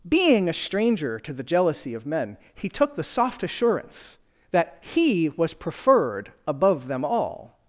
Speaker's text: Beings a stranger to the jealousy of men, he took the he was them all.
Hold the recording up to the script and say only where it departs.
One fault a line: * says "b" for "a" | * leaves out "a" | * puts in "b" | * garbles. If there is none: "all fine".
* says "Being" for "Beings"
* puts in "soft assurance that"
* puts in "preferred above"